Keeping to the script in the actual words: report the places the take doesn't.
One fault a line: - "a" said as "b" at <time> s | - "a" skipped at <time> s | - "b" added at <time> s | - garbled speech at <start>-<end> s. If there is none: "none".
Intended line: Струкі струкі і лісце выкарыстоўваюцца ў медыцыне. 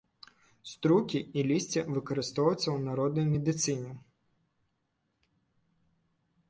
- "струкі" skipped at 1.2 s
- "народнай" added at 2.9 s